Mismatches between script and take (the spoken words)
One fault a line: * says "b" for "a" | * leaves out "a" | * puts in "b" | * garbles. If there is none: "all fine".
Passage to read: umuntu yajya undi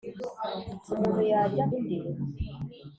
all fine